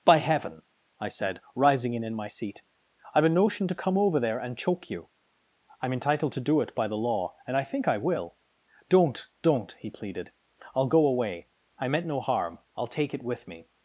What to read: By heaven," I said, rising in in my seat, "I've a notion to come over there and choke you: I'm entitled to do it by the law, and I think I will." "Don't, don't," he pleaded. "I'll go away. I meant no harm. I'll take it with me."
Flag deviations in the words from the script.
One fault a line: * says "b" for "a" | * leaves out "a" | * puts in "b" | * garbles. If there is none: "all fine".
all fine